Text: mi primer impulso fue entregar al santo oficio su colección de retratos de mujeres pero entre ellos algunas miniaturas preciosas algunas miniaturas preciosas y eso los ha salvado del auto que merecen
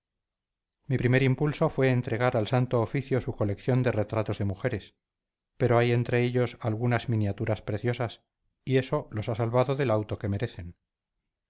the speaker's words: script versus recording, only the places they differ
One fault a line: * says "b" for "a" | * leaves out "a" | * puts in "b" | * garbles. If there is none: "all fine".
* puts in "hay"
* leaves out "algunas miniaturas preciosas"